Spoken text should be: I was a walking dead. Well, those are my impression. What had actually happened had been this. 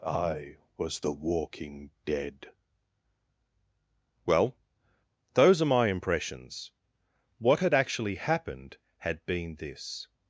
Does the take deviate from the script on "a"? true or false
true